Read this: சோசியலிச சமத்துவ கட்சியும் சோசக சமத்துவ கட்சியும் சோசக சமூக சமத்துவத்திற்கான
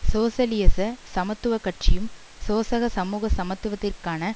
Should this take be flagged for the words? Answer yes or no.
yes